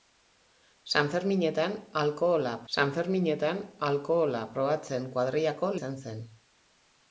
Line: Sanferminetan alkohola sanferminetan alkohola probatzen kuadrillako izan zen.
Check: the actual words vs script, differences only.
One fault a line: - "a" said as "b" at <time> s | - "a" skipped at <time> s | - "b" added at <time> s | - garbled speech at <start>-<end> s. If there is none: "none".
none